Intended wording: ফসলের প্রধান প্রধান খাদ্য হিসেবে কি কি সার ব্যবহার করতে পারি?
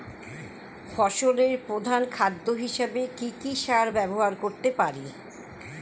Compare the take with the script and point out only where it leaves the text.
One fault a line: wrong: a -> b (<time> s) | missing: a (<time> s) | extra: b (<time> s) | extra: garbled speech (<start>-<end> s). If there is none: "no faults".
missing: প্রধান (2.0 s)